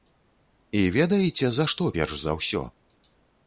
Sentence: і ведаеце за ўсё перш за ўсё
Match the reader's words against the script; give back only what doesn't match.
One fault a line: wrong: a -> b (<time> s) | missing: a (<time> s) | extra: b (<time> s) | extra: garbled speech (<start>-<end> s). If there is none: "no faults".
wrong: ўсё -> што (1.7 s)